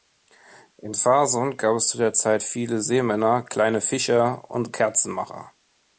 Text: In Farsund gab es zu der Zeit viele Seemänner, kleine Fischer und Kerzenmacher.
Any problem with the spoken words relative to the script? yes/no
no